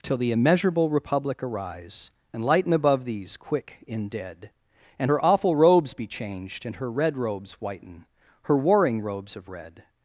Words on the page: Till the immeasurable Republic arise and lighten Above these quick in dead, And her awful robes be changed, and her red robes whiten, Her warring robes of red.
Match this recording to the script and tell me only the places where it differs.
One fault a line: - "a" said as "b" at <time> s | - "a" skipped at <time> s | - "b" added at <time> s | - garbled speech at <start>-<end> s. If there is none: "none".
none